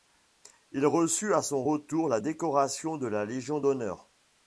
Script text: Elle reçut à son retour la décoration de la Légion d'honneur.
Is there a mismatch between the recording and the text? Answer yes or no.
yes